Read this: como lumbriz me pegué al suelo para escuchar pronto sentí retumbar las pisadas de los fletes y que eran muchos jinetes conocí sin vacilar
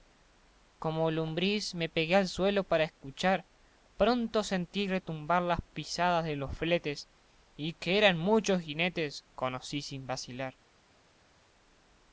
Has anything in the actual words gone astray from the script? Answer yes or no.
no